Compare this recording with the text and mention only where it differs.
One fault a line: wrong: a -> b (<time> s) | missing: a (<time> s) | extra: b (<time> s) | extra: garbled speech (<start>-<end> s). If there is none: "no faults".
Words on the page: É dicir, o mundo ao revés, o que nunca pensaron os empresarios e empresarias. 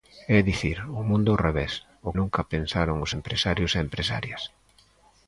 missing: que (2.1 s)